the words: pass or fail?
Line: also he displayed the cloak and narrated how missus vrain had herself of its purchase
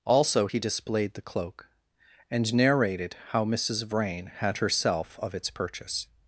pass